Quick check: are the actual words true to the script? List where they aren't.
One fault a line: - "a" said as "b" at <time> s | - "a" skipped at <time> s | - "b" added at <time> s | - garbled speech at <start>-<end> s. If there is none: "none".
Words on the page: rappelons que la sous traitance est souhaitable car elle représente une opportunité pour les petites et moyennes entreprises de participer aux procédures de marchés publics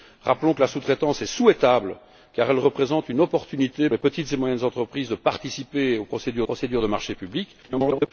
- "pour" skipped at 3.9 s
- "procédures" added at 6.4 s
- garbled speech at 7.6-8.1 s